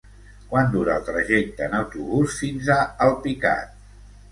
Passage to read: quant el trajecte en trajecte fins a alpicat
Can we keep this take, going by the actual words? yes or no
no